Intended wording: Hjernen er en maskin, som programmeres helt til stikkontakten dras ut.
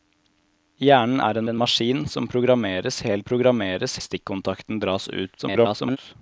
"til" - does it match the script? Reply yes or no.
no